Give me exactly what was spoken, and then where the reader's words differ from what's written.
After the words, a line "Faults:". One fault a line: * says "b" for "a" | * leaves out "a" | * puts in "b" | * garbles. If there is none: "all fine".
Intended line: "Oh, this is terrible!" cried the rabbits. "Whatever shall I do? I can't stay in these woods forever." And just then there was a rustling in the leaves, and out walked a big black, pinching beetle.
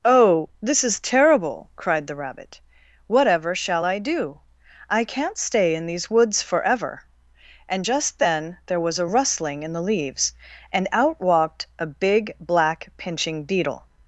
"Oh, this is terrible!" cried the rabbit. "Whatever shall I do? I can't stay in these woods forever." And just then there was a rustling in the leaves, and out walked a big black, pinching beetle.
Faults:
* says "rabbit" for "rabbits"